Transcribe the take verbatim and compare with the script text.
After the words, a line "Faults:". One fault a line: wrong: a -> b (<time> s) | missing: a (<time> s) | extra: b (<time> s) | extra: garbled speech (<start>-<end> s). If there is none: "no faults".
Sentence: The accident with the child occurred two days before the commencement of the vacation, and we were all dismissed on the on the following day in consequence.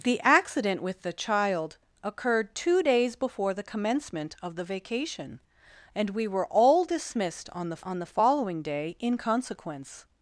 The accident with the child occurred two days before the commencement of the vacation, and we were all dismissed on the on the following day in consequence.
Faults:
no faults